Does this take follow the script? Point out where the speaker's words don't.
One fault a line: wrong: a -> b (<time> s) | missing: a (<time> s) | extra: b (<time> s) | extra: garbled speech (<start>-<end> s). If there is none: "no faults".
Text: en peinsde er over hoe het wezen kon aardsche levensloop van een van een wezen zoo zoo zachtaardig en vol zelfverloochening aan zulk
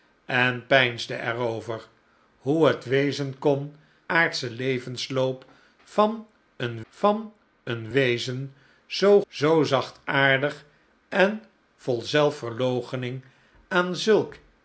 no faults